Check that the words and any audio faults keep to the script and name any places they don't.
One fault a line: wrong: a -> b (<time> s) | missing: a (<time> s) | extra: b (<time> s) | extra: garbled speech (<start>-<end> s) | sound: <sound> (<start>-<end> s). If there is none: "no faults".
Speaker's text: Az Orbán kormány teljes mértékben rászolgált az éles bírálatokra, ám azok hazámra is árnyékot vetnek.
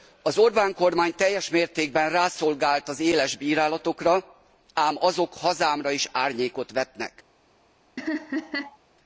sound: laugh (8.0-8.8 s)